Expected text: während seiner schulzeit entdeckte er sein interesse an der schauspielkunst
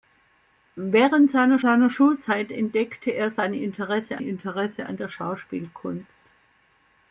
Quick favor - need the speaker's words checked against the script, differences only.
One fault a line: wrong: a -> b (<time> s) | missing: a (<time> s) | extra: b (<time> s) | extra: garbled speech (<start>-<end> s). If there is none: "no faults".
extra: seiner (1.6 s)
extra: interesse (4.2 s)